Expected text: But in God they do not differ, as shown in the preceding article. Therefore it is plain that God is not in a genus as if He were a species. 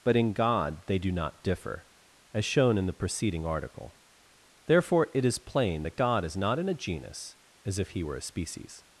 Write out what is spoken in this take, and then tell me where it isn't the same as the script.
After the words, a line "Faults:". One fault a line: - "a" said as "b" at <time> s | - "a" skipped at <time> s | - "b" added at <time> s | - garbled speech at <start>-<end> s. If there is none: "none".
But in God they do not differ, as shown in the preceding article. Therefore it is plain that God is not in a genus as if He were a species.
Faults:
none